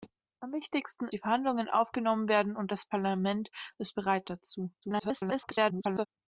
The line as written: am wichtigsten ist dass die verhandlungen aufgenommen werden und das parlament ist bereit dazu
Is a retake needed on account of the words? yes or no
yes